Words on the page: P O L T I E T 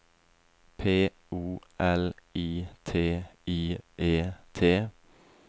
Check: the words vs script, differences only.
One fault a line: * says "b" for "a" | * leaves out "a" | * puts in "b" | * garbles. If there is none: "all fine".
* puts in "I"